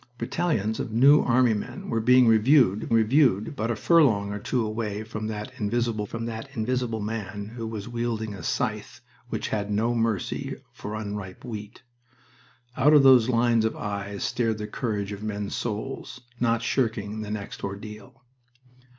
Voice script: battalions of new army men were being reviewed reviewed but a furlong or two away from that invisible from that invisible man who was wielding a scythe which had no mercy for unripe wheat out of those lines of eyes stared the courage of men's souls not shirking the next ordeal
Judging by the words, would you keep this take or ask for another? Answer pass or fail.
pass